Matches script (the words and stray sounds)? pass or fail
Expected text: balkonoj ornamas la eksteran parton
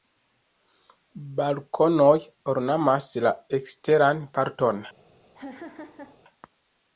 fail